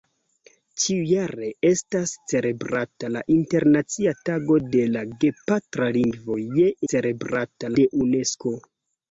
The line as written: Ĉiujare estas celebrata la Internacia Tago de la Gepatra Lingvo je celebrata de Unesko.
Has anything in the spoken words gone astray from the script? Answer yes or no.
no